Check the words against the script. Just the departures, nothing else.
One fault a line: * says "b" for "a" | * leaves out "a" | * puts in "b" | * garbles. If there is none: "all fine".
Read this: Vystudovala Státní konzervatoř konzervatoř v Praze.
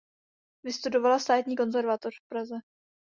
* leaves out "konzervatoř"